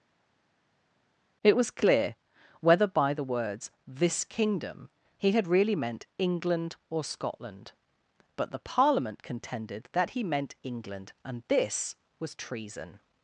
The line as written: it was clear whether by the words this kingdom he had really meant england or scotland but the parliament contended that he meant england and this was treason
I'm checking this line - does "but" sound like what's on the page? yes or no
yes